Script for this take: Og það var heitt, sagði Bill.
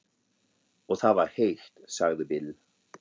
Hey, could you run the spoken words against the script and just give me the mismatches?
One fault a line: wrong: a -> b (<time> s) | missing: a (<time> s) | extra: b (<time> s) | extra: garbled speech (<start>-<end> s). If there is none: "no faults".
no faults